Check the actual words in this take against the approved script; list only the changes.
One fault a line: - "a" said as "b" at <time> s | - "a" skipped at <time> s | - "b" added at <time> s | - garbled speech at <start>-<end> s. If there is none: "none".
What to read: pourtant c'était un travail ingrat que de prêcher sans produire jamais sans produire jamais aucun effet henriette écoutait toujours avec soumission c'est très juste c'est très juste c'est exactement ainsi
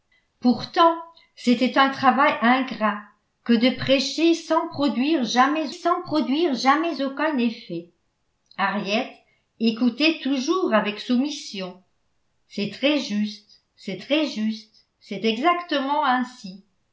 none